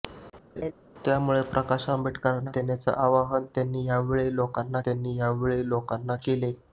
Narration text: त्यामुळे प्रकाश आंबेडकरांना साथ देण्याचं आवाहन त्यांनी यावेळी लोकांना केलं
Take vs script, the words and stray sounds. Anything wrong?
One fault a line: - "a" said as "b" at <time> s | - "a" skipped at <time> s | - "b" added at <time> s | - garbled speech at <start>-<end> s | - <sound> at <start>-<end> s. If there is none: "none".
- laugh at 0.6-0.7 s
- "साथ" skipped at 2.5 s
- "त्यांनी यावेळी लोकांना" added at 4.8 s